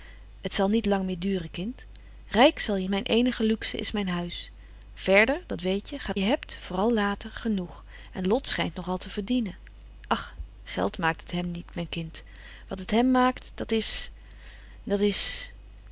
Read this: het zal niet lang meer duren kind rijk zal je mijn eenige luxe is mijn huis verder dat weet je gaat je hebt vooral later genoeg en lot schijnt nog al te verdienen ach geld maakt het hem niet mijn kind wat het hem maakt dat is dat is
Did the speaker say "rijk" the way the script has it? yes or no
yes